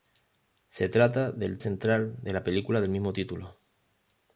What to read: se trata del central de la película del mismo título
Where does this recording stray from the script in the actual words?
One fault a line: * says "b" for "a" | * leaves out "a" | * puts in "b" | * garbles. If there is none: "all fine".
all fine